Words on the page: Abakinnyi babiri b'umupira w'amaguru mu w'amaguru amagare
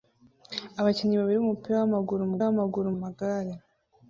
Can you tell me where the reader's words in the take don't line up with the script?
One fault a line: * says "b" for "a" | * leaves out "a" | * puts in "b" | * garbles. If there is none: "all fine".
all fine